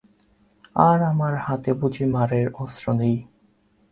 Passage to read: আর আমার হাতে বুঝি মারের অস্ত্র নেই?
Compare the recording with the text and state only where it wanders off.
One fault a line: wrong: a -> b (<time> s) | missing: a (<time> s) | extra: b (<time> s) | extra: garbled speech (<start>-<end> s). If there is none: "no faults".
no faults